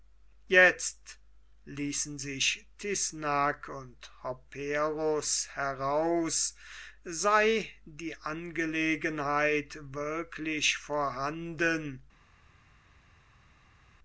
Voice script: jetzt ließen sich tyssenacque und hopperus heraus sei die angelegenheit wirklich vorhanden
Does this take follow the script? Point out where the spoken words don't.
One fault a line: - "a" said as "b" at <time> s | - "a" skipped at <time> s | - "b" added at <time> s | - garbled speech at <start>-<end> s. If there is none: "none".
none